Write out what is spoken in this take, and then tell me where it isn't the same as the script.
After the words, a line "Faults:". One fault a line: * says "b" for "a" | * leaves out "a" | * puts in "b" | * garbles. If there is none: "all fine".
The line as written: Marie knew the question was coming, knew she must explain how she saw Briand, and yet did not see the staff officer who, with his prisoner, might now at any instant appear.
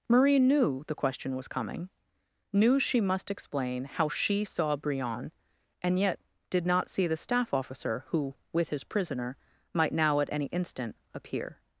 Marie knew the question was coming, knew she must explain how she saw Briand, and yet did not see the staff officer who, with his prisoner, might now at any instant appear.
Faults:
all fine